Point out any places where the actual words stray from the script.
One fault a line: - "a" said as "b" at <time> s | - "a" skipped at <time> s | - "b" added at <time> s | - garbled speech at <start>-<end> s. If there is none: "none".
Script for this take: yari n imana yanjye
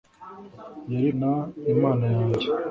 none